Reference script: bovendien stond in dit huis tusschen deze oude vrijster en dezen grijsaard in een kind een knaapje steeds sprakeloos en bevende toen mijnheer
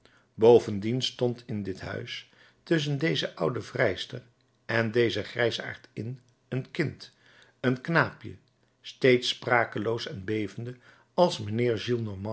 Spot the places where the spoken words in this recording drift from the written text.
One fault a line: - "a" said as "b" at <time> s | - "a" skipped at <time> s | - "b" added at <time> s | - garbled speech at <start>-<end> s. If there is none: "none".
- "toen" said as "als" at 11.1 s